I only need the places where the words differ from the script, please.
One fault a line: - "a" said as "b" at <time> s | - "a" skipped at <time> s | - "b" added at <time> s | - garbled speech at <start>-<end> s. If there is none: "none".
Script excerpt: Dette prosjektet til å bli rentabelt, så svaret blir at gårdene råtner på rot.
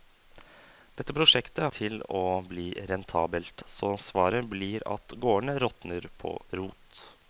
none